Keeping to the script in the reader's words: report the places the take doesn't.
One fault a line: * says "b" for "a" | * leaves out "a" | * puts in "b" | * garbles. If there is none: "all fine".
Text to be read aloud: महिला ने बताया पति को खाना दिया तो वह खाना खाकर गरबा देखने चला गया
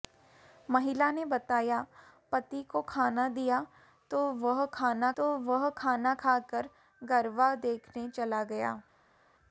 * puts in "तो वह खाना"